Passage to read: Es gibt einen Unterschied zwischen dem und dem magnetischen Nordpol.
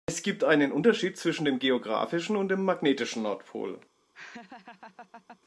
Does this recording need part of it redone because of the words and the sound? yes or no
yes